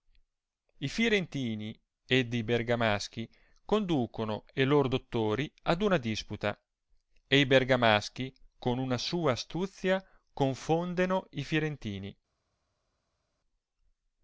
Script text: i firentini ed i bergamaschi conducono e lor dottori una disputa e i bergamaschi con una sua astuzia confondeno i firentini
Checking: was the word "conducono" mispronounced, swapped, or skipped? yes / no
no